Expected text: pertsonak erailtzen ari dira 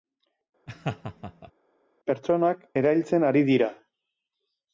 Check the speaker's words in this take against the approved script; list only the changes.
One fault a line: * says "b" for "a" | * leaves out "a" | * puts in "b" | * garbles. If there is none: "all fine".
all fine